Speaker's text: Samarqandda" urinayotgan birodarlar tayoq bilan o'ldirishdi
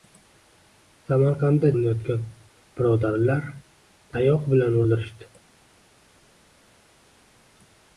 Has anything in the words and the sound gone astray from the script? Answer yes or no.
no